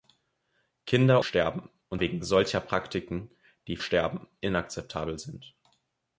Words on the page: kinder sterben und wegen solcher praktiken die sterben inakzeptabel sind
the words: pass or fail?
pass